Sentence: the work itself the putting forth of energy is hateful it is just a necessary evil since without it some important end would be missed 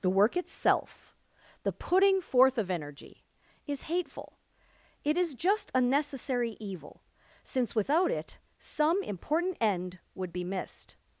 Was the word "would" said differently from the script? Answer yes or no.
no